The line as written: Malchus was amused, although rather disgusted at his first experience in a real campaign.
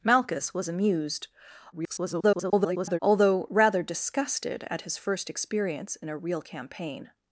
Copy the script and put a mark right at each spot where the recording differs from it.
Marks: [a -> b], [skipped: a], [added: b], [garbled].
Malchus was amused, [garbled] although rather disgusted at his first experience in a real campaign.